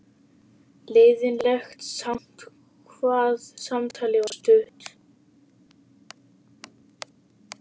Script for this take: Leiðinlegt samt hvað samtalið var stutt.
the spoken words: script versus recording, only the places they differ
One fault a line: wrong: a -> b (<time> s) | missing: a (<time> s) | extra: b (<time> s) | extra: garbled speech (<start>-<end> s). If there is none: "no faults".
no faults